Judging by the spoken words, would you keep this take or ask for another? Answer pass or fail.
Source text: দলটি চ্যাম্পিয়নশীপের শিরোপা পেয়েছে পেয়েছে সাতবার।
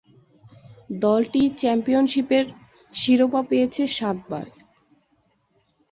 fail